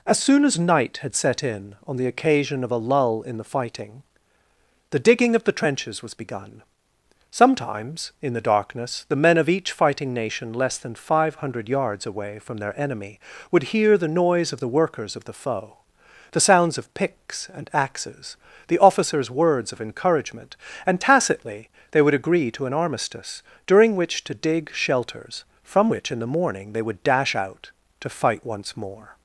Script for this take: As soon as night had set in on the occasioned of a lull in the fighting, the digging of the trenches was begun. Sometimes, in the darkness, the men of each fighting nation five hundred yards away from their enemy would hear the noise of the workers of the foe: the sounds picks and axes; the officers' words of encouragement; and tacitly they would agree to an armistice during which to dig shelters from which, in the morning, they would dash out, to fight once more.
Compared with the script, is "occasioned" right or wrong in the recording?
wrong